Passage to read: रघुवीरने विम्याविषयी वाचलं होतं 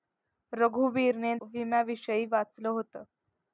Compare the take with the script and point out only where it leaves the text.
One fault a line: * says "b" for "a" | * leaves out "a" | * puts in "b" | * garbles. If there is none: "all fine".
all fine